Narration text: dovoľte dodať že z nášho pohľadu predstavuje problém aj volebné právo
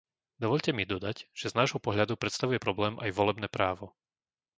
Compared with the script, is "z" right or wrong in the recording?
right